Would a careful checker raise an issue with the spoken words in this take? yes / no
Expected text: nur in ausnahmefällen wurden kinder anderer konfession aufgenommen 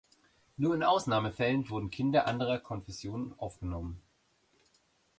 no